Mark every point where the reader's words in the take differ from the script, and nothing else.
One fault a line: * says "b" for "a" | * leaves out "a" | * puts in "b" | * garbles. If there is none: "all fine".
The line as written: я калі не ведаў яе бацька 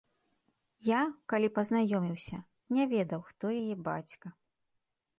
* puts in "пазнаёміўся"
* puts in "хто"